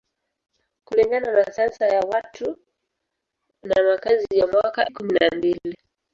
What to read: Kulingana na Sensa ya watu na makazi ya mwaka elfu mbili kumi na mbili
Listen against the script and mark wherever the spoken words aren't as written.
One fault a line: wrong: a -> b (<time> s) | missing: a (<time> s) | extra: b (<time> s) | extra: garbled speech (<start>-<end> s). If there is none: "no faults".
missing: elfu mbili (4.9 s)